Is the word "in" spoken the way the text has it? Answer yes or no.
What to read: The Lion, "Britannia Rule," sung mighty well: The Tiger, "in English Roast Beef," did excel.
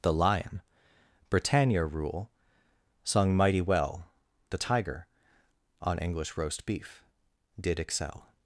no